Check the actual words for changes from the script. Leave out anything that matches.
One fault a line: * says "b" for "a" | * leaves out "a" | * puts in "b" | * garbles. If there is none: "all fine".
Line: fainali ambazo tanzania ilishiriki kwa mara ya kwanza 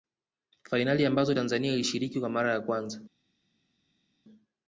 all fine